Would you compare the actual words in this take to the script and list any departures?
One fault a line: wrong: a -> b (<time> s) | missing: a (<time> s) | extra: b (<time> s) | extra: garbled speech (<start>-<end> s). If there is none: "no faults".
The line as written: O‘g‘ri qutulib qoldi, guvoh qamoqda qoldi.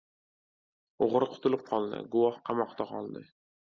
no faults